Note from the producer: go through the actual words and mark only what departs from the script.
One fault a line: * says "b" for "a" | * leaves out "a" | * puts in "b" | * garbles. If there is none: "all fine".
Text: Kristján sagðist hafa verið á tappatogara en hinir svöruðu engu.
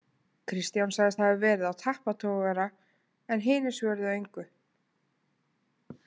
all fine